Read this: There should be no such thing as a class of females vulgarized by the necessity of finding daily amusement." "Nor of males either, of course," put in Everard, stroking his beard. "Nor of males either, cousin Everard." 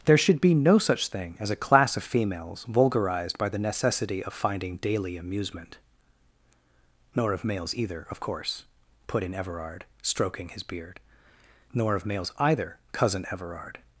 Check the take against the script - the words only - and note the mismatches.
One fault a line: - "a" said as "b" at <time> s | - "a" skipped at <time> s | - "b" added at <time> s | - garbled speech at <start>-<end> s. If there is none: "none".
none